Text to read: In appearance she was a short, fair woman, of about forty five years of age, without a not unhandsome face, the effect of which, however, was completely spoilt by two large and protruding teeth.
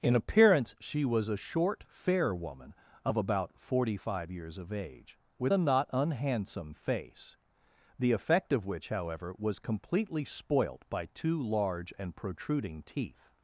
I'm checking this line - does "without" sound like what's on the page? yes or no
no